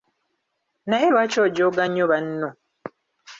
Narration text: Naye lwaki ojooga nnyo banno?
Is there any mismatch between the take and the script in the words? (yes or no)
no